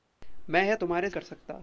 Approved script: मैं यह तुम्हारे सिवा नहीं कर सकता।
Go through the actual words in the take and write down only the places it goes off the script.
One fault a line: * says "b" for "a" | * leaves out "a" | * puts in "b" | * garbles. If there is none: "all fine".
* leaves out "सिवा नहीं"